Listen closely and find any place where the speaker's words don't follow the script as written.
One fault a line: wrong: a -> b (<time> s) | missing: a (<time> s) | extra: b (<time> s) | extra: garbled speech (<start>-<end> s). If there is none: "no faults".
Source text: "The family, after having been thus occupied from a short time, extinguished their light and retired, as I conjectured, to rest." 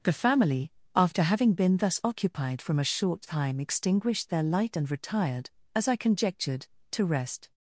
no faults